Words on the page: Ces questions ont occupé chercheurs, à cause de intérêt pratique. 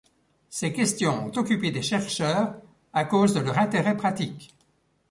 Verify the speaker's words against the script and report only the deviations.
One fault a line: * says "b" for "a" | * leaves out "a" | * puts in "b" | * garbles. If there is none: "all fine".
* puts in "des"
* puts in "leur"